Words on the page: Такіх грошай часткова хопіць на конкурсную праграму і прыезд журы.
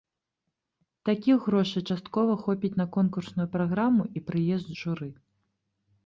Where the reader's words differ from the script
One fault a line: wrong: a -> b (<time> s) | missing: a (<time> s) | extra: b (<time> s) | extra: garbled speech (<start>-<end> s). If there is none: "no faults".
no faults